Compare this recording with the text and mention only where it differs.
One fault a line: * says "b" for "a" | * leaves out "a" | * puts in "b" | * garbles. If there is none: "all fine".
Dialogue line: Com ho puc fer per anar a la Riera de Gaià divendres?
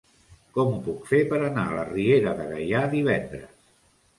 all fine